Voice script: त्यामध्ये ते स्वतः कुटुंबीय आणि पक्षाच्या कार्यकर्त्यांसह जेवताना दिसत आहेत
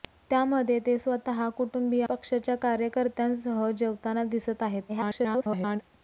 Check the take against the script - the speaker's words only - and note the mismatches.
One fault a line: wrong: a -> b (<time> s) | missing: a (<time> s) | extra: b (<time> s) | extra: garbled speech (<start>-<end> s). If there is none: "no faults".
missing: आणि (2.0 s)
extra: garbled speech (4.9-5.8 s)